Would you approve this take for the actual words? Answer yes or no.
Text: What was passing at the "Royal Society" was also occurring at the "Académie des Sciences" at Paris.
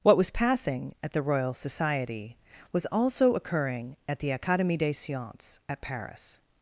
yes